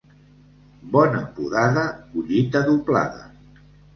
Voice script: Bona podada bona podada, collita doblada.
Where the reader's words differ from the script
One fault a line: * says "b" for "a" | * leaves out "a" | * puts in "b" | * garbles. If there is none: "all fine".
* leaves out "bona podada"